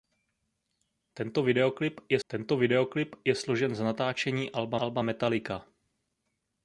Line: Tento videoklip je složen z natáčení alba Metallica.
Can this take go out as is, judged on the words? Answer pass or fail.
fail